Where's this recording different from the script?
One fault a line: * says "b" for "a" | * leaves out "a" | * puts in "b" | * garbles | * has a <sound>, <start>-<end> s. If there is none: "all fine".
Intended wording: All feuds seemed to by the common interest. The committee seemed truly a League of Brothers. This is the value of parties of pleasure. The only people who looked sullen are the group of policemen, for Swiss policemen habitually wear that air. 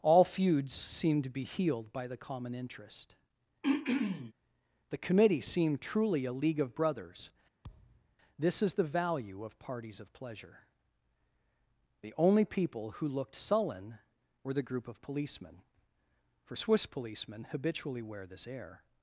* puts in "be healed"
* has a throat clearing, 3.6-4.3 s
* has a thud, 7.6-8.2 s
* says "were" for "are"
* says "this" for "that"